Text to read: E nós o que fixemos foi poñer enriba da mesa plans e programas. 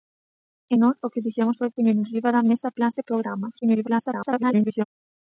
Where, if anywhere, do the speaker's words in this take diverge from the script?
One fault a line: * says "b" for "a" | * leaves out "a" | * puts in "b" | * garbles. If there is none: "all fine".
* garbles